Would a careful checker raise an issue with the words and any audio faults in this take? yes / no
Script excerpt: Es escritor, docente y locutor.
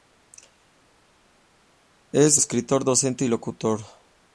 no